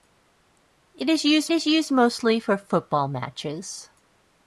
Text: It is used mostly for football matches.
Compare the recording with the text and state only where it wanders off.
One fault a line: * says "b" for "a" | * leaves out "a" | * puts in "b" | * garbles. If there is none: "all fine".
* puts in "is used"